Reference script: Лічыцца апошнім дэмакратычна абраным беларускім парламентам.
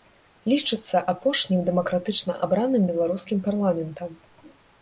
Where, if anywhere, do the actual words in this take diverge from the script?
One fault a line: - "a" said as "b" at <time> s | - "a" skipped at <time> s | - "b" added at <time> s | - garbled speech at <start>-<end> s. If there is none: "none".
none